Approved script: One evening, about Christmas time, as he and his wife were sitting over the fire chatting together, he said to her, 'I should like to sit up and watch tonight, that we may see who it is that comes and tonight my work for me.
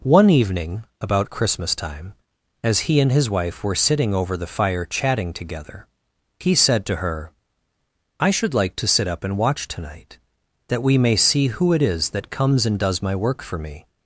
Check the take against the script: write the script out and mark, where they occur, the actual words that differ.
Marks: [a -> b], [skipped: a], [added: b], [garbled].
One evening, about Christmas time, as he and his wife were sitting over the fire chatting together, he said to her, 'I should like to sit up and watch tonight, that we may see who it is that comes and [tonight -> does] my work for me.